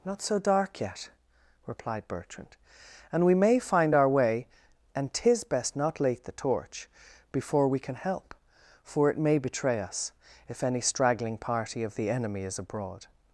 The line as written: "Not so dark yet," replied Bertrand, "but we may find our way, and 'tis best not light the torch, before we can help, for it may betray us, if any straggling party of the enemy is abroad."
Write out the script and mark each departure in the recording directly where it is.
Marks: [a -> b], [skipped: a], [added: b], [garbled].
"Not so dark yet," replied Bertrand, ["but -> and] we may find our way, and 'tis best not [light -> late] the torch, before we can help, for it may betray us, if any straggling party of the enemy is abroad."